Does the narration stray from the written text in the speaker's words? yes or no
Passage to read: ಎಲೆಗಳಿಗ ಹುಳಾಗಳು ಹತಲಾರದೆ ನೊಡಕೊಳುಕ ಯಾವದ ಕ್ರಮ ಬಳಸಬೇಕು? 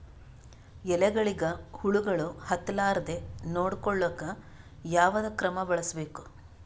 no